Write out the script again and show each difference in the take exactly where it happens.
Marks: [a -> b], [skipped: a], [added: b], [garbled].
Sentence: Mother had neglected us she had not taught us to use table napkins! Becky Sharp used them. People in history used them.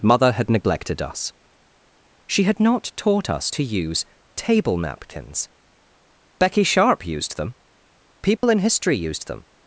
Mother had neglected us she had not taught us to use table napkins! Becky Sharp used them. People in history used them.